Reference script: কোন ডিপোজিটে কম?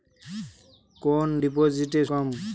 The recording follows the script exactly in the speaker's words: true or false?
true